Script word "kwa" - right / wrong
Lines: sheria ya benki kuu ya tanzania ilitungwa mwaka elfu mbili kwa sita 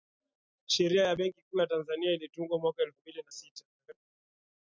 wrong